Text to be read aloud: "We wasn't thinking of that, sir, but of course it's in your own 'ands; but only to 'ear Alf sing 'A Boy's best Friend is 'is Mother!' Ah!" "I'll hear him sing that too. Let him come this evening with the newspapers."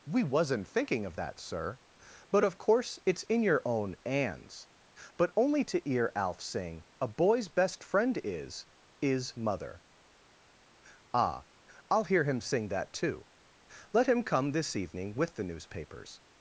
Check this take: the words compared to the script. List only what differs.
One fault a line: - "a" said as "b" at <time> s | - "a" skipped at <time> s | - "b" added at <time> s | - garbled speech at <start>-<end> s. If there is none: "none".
none